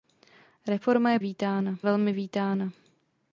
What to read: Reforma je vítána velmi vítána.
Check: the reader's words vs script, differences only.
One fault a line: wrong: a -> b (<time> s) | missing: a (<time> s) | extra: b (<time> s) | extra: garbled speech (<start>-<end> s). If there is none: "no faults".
no faults